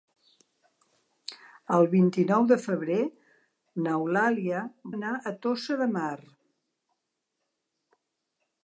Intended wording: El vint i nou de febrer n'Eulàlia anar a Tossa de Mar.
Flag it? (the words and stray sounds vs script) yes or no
no